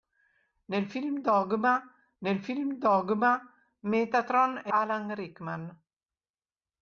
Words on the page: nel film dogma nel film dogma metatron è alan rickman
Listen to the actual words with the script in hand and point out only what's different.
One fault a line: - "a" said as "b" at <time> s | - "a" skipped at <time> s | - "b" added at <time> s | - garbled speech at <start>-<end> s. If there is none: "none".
none